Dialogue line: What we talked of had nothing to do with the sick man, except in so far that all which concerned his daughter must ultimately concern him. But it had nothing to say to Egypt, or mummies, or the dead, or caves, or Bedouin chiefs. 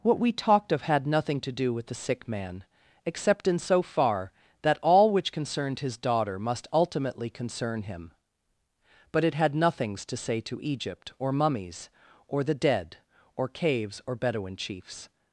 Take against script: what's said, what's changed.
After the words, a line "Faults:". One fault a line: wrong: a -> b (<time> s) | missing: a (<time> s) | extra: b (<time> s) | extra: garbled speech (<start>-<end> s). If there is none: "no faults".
What we talked of had nothing to do with the sick man, except in so far that all which concerned his daughter must ultimately concern him. But it had nothings to say to Egypt, or mummies, or the dead, or caves, or Bedouin chiefs.
Faults:
wrong: nothing -> nothings (9.5 s)